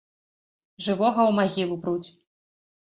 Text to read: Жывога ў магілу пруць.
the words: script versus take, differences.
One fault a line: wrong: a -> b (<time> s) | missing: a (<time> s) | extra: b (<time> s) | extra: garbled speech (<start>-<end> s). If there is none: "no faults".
no faults